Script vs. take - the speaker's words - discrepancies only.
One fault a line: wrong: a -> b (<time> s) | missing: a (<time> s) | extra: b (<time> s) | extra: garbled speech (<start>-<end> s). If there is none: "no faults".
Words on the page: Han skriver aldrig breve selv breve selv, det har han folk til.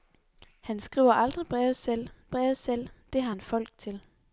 no faults